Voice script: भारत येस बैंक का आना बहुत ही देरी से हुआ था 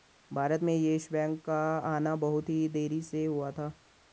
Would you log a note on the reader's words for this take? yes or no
yes